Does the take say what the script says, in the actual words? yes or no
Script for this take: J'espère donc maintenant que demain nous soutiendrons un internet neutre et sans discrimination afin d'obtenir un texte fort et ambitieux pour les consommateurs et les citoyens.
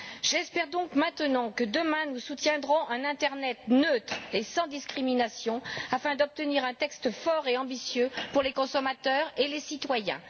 yes